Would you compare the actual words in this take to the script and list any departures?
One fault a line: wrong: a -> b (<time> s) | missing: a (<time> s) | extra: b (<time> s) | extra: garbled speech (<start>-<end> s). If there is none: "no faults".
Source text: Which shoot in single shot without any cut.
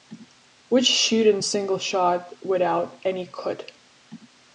no faults